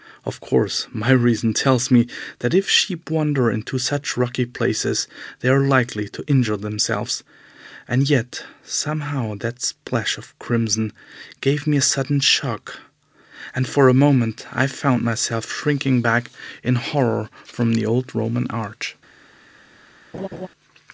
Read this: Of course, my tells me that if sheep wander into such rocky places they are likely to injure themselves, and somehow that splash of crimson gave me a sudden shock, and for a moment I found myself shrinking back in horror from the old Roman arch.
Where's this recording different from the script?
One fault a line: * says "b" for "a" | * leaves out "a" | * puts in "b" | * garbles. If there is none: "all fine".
* puts in "reason"
* puts in "yet"